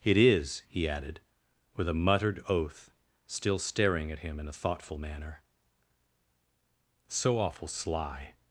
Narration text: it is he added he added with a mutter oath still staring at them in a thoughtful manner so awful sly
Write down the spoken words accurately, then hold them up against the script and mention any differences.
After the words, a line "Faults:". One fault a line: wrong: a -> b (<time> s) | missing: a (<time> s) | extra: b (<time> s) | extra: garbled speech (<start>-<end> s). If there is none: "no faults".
it is he added with a muttered oath still staring at him in a thoughtful manner so awful sly
Faults:
missing: he added (1.2 s)
wrong: mutter -> muttered (1.9 s)
wrong: them -> him (4.2 s)